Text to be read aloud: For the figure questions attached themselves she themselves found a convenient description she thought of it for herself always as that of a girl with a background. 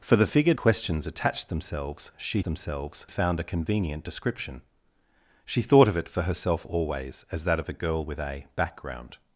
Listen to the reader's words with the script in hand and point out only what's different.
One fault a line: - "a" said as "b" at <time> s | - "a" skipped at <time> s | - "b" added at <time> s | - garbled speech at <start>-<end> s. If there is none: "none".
none